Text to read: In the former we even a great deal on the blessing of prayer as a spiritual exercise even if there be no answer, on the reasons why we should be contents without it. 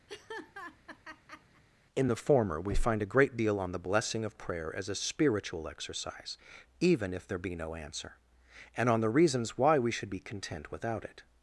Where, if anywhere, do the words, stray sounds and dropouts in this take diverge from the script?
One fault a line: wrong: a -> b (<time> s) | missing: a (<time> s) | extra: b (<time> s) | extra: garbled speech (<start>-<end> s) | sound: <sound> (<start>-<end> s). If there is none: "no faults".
sound: laugh (0.1-1.6 s)
wrong: even -> find (2.8 s)
extra: and (8.8 s)
wrong: contents -> content (10.2 s)